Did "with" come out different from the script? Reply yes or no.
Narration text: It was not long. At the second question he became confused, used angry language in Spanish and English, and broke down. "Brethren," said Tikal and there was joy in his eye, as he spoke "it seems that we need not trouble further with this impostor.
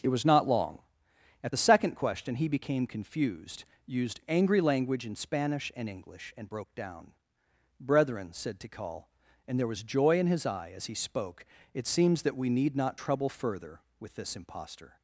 no